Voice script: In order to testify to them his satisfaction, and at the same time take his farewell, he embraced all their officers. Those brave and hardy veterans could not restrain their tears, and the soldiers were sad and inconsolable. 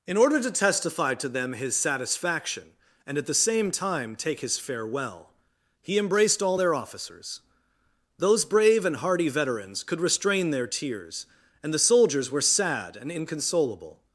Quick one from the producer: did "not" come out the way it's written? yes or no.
no